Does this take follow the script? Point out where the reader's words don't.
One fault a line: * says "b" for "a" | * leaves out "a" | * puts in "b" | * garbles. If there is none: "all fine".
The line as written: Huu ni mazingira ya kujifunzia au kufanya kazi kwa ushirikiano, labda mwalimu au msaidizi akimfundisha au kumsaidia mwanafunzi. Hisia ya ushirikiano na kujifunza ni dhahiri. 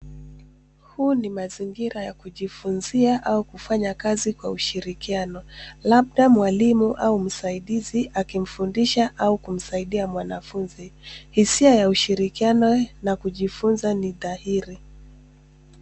all fine